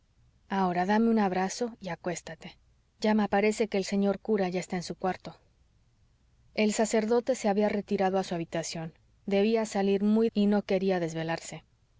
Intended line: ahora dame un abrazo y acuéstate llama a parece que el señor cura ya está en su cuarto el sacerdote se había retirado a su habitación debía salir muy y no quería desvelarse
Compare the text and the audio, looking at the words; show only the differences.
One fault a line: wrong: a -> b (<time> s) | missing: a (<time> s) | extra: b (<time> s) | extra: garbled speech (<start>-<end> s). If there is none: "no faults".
no faults